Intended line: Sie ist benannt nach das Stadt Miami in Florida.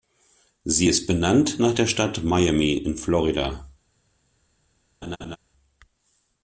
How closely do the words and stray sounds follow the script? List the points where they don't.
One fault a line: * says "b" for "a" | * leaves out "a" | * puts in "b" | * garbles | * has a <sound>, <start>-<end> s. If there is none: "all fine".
* says "der" for "das"
* has a laugh, 5.0-5.4 s